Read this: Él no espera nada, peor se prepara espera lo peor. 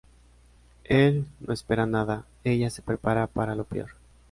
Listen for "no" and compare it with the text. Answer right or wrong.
right